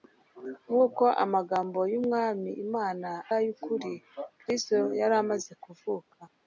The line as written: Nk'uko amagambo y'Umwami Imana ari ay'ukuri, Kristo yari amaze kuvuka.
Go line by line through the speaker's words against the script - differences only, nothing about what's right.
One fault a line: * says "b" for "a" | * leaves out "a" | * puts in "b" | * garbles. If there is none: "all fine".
* leaves out "ari"